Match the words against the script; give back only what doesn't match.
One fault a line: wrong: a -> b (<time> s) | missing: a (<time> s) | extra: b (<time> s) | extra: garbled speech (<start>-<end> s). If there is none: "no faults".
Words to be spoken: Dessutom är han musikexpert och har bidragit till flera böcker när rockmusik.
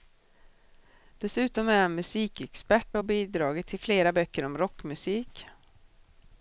wrong: när -> om (4.4 s)